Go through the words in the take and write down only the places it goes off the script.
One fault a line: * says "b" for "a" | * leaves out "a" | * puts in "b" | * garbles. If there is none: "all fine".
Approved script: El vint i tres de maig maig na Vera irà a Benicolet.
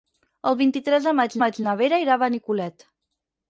all fine